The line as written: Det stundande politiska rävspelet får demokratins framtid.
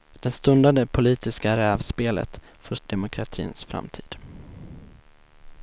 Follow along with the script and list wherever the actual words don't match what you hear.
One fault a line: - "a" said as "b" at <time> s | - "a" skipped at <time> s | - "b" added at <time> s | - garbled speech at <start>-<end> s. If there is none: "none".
none